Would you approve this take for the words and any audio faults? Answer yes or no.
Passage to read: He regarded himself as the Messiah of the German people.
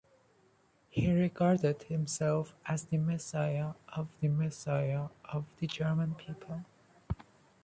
no